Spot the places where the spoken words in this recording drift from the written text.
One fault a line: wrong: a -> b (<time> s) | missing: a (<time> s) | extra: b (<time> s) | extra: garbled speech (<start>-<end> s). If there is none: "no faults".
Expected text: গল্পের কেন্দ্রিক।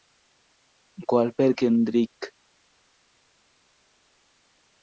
no faults